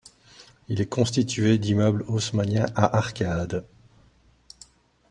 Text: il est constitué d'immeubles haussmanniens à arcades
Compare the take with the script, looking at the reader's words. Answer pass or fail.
pass